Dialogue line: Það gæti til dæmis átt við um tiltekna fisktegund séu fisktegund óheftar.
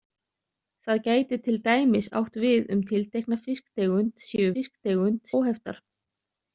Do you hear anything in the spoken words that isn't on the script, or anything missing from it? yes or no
no